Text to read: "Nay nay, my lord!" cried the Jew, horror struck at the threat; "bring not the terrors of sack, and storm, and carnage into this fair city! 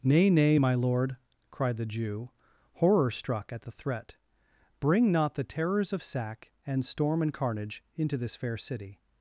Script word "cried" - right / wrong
right